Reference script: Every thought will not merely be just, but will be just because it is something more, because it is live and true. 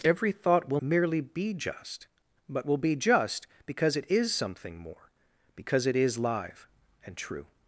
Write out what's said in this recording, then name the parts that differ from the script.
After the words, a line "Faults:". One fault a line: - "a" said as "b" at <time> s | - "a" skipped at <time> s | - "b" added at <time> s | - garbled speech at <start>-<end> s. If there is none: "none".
Every thought will merely be just, but will be just because it is something more, because it is live and true.
Faults:
- "not" skipped at 0.8 s